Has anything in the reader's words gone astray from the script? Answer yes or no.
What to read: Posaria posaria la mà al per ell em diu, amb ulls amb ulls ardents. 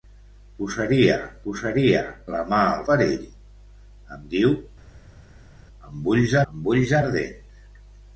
no